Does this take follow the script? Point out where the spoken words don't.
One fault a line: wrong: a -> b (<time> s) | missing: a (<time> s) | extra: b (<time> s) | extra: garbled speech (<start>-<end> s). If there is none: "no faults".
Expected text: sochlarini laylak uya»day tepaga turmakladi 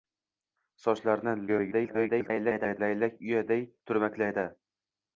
extra: garbled speech (1.5-2.8 s)
missing: tepaga (3.6 s)